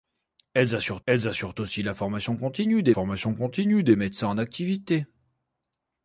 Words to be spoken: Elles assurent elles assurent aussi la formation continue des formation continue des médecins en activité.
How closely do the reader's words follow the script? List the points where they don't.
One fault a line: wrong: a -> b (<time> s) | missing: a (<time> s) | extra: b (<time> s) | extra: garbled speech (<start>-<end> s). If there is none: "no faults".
no faults